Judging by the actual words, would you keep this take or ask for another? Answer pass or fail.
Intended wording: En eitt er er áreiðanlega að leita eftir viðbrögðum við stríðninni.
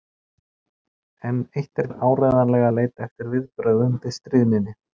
pass